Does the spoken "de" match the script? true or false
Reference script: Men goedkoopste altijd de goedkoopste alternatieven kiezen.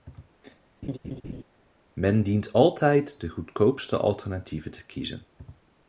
true